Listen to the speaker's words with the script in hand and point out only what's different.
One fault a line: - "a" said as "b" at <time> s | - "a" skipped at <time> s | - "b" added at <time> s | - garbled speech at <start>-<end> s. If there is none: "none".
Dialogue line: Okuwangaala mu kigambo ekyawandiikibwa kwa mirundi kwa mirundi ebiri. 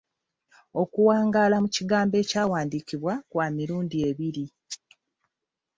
- "kwa mirundi" skipped at 4.0 s